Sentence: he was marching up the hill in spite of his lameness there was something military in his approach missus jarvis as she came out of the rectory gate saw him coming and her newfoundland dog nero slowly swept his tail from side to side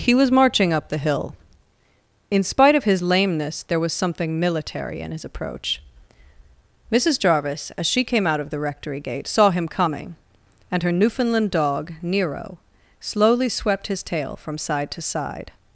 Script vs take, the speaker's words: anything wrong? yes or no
no